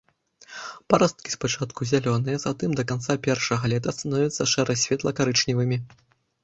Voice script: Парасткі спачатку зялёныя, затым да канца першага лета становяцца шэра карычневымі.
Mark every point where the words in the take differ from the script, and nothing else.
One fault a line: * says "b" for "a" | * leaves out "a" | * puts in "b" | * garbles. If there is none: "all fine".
* puts in "светла"